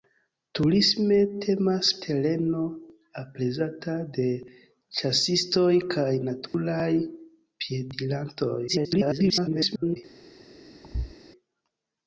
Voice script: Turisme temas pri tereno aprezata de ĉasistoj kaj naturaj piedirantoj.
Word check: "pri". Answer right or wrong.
wrong